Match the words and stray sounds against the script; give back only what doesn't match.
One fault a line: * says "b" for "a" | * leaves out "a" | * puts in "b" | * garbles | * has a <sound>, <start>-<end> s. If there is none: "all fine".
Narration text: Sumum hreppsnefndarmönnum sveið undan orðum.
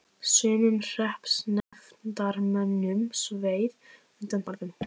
* has a dropout, 1.6-1.7 s